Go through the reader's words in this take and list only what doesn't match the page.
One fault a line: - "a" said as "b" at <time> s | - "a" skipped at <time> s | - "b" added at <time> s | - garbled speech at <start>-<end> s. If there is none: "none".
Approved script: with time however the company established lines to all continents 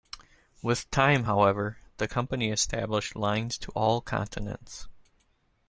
none